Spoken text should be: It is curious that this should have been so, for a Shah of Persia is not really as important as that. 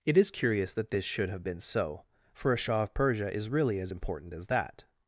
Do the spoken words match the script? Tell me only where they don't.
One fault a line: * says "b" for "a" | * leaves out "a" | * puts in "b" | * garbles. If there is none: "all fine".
* leaves out "not"